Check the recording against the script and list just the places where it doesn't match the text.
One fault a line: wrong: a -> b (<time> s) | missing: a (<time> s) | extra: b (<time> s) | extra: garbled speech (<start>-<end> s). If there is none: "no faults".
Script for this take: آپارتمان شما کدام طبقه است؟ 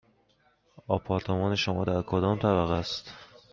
extra: در (1.8 s)